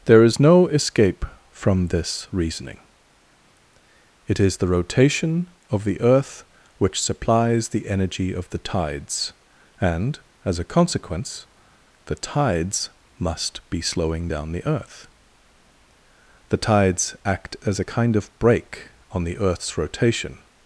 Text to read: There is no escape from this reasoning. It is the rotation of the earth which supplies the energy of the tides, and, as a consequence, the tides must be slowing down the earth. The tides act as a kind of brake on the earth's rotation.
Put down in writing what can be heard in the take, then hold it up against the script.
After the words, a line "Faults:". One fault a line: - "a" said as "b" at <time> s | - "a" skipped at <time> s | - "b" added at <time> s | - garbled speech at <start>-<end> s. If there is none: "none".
There is no escape from this reasoning. It is the rotation of the earth which supplies the energy of the tides, and, as a consequence, the tides must be slowing down the earth. The tides act as a kind of brake on the earth's rotation.
Faults:
none